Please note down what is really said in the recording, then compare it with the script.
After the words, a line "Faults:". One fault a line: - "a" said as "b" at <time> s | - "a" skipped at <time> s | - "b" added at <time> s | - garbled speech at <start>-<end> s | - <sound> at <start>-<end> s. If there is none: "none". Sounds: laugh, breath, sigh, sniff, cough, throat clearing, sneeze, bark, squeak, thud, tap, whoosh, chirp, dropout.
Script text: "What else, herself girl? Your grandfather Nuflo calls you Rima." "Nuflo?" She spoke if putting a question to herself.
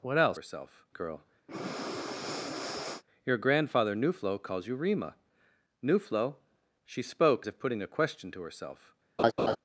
"What else, herself girl? Your grandfather Nuflo calls you Rima." "Nuflo?" She spoke if putting a question to herself.
Faults:
- breath at 1.5-3.0 s
- laugh at 9.2-9.6 s